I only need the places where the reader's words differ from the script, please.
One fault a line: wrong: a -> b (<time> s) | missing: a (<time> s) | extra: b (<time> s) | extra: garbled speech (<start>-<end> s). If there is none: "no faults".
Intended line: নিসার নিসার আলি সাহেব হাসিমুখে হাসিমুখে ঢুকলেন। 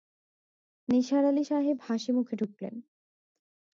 missing: নিসার (1.2 s)
missing: হাসিমুখে (2.3 s)